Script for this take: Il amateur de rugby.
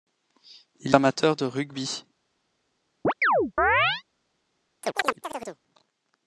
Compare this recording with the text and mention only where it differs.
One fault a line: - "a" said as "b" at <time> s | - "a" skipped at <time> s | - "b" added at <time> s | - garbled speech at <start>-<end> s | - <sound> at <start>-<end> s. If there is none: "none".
- chirp at 3.0-4.0 s
- chirp at 4.8-5.6 s